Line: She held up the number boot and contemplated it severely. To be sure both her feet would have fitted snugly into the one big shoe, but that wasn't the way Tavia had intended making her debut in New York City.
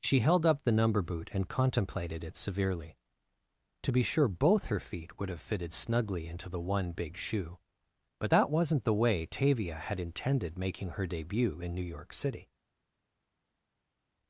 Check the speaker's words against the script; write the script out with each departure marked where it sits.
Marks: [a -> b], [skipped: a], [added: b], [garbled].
She held up the number boot and contemplated it severely. To be sure both her feet would have fitted snugly into the one big shoe, but that wasn't the way Tavia had intended making her debut in New York City.